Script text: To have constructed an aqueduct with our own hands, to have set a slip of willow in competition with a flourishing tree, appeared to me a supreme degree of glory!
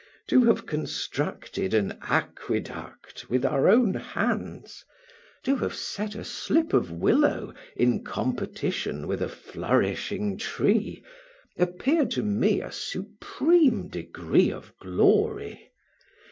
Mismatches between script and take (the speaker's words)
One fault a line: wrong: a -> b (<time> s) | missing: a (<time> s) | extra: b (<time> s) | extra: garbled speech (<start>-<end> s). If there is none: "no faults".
no faults